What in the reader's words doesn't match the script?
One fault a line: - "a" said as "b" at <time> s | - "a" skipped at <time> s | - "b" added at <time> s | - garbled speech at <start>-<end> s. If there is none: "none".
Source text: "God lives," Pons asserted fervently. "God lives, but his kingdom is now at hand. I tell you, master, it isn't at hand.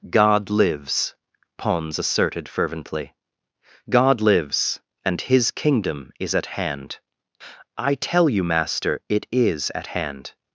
- "but" said as "and" at 5.0 s
- "now" skipped at 6.4 s
- "isn't" said as "is" at 9.3 s